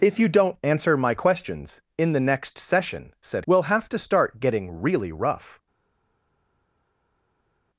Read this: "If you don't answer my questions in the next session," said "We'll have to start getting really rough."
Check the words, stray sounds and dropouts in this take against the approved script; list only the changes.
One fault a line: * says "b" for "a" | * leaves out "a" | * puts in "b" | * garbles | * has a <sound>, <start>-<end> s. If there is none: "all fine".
all fine